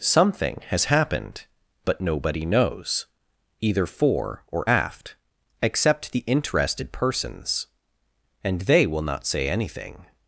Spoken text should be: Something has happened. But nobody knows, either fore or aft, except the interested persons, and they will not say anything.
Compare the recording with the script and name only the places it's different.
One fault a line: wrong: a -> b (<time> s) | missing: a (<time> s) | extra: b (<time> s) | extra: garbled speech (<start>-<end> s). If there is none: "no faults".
no faults